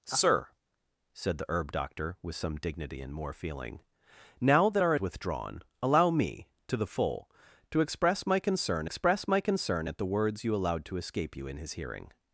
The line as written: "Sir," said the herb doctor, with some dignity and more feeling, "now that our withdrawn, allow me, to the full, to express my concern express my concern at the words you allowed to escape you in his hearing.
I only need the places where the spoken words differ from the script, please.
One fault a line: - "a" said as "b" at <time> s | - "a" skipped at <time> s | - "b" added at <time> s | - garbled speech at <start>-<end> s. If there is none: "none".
none